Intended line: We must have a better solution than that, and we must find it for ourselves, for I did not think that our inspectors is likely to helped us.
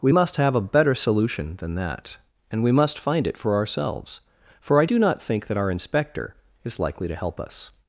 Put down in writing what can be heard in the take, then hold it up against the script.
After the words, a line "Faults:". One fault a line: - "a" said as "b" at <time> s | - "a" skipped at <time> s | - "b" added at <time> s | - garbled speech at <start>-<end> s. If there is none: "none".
We must have a better solution than that, and we must find it for ourselves, for I do not think that our inspector is likely to help us.
Faults:
- "did" said as "do" at 4.8 s
- "inspectors" said as "inspector" at 5.7 s
- "helped" said as "help" at 7.1 s